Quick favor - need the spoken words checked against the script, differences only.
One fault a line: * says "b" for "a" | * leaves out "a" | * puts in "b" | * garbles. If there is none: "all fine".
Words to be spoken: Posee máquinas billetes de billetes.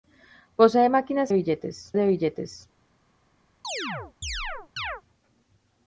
all fine